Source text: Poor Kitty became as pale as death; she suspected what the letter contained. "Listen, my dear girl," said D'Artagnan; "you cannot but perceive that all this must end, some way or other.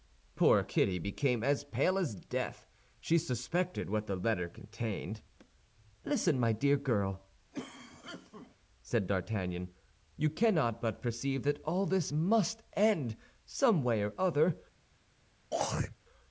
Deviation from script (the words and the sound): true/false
true